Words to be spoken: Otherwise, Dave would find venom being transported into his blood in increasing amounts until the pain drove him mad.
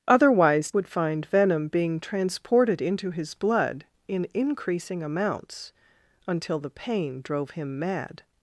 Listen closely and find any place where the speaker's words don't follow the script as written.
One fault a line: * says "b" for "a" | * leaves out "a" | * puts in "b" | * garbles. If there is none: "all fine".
* leaves out "Dave"